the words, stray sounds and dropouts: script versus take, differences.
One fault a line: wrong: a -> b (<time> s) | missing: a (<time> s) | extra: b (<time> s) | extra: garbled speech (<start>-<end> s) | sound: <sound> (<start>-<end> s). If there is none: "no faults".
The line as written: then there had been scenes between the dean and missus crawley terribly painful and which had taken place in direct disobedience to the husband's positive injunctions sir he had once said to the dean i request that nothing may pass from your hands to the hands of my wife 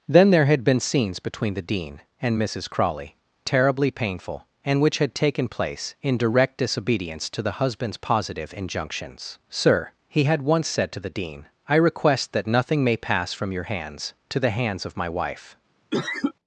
sound: cough (15.9-16.3 s)